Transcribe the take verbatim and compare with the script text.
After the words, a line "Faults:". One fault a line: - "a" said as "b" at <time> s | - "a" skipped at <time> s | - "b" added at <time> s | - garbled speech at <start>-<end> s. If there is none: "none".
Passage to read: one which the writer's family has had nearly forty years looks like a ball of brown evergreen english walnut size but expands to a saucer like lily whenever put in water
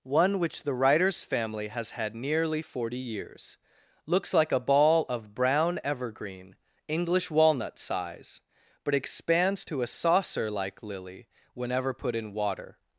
one which the writer's family has had nearly forty years looks like a ball of brown evergreen english walnut size but expands to a saucer like lily whenever put in water
Faults:
none